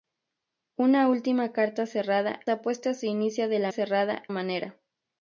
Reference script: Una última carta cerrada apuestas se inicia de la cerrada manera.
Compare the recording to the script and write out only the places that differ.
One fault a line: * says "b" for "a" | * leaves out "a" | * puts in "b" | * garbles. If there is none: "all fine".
all fine